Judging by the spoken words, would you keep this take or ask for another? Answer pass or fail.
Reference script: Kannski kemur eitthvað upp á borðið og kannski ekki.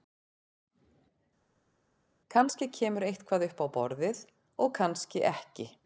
pass